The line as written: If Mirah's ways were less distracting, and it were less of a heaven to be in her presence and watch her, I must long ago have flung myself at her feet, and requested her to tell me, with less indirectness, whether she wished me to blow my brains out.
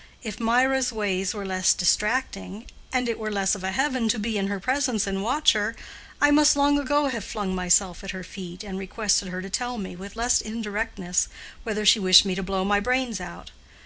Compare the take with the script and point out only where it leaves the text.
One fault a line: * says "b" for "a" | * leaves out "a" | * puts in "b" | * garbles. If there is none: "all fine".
all fine